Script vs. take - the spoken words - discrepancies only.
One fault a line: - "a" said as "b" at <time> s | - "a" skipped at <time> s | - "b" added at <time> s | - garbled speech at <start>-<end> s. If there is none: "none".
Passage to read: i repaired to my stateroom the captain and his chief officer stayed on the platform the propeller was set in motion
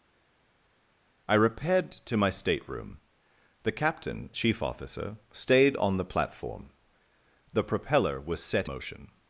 - "and his" skipped at 4.3 s
- "in" skipped at 8.7 s